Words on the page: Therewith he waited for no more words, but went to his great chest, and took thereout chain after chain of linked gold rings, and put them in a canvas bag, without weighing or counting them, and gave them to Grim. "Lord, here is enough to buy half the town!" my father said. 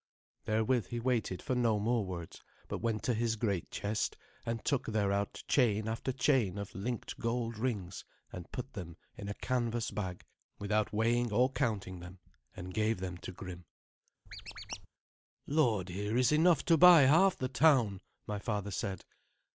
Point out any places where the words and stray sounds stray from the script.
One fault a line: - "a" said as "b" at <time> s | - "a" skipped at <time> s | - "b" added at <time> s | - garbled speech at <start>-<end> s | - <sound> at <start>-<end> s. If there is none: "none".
- squeak at 14.3-14.9 s